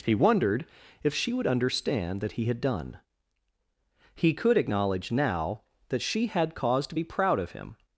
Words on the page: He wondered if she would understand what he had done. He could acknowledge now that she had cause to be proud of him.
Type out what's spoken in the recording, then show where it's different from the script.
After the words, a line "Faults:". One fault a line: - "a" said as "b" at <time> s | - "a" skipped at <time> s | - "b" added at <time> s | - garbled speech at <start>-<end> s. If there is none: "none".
He wondered if she would understand that he had done. He could acknowledge now that she had cause to be proud of him.
Faults:
- "what" said as "that" at 2.2 s